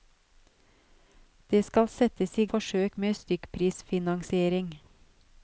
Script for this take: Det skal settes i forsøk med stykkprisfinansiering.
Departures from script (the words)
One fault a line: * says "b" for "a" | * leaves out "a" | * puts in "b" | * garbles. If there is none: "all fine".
all fine